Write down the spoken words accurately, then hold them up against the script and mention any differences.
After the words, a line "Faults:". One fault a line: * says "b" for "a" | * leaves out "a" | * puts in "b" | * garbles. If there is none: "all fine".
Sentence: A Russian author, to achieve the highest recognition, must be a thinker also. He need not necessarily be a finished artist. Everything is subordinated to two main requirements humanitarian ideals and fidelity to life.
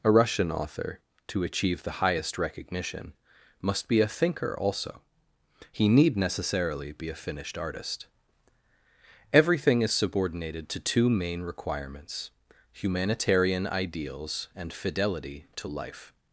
A Russian author, to achieve the highest recognition, must be a thinker also. He need necessarily be a finished artist. Everything is subordinated to two main requirements humanitarian ideals and fidelity to life.
Faults:
* leaves out "not"